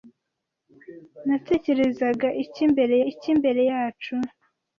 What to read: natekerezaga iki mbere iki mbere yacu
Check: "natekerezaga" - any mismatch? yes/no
no